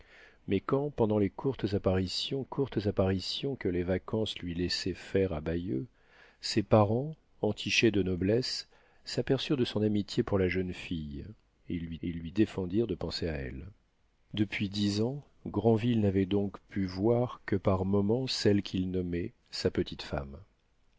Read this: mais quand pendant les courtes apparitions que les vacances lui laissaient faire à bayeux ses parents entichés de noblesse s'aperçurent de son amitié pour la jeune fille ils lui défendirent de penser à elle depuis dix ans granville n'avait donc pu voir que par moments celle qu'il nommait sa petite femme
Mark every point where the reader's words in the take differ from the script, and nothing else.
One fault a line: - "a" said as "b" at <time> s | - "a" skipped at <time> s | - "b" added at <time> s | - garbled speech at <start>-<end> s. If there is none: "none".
- "courtes apparitions" added at 2.4 s
- "ils lui" added at 12.0 s